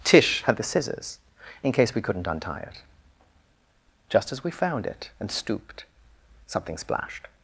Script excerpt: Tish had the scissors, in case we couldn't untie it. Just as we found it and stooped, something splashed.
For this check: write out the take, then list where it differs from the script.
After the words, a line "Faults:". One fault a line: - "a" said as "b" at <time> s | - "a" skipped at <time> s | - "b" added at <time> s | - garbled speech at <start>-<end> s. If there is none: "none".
Tish had the scissors, in case we couldn't untie it. Just as we found it and stooped, something splashed.
Faults:
none